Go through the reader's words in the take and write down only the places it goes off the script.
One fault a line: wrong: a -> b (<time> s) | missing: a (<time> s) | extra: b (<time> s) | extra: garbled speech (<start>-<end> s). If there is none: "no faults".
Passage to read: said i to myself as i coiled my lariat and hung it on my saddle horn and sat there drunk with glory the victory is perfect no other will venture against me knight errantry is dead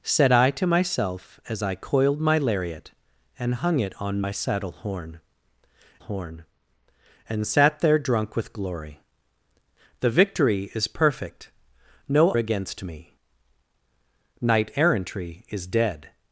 extra: horn (6.0 s)
missing: other will venture (12.3 s)